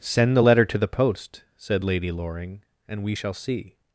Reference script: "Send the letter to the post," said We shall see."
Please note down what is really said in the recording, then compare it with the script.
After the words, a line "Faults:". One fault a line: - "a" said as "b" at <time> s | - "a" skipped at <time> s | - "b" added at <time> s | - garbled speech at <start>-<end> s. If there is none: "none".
"Send the letter to the post," said Lady Loring, "and we shall see."
Faults:
- "Lady Loring and" added at 1.8 s